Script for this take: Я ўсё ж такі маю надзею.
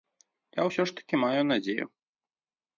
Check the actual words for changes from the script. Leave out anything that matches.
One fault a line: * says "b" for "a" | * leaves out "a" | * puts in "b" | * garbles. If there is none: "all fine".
all fine